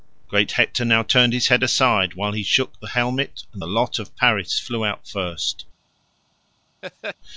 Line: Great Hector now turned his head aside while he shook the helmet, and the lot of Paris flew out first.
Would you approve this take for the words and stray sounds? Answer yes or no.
no